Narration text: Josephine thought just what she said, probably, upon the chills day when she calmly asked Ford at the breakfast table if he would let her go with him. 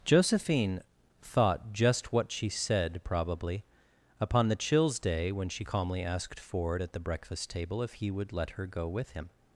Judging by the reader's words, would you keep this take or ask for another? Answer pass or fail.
pass